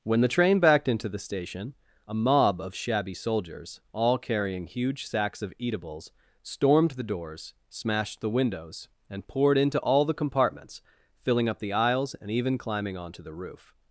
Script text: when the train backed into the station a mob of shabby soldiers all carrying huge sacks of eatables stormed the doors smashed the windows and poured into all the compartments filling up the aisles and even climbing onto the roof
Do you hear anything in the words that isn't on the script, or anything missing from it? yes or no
no